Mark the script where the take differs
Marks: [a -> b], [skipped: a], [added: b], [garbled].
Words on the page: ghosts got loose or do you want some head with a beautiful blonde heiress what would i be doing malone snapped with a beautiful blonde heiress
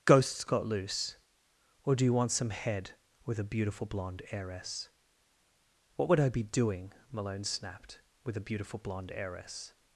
ghosts got loose or do you want some head with a beautiful blonde heiress what would i be doing malone snapped with a beautiful blonde heiress